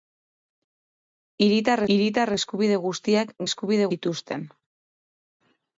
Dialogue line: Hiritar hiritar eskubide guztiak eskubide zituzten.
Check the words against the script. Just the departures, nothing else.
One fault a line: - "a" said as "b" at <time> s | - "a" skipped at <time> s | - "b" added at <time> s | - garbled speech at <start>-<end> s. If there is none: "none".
none